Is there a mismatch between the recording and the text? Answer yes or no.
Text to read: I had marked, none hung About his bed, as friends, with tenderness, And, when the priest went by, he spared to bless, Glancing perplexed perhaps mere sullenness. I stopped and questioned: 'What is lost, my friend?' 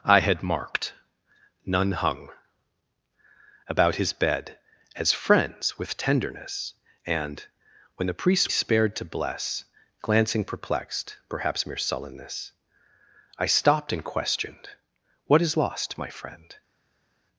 yes